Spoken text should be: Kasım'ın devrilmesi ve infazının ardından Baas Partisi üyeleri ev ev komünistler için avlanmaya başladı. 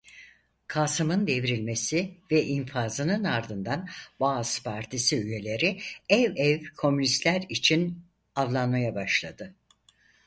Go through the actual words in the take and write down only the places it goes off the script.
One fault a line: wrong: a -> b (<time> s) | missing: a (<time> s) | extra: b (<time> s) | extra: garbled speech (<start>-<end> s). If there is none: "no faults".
no faults